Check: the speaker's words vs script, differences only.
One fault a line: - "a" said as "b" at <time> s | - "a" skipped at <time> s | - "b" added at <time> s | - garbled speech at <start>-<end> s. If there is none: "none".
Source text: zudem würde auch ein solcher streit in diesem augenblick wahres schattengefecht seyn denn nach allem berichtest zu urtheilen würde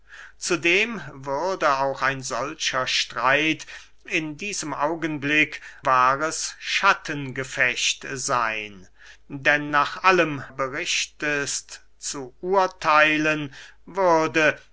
none